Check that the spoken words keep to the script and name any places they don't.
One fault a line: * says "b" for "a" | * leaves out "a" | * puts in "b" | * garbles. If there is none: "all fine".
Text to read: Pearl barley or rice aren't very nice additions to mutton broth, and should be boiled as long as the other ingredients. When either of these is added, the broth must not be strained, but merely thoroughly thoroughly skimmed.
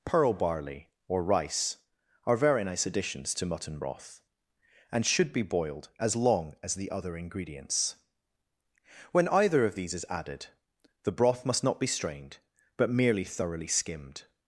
* says "are" for "aren't"
* leaves out "thoroughly"